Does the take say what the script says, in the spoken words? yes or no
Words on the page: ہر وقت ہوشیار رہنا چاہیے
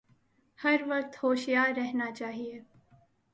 yes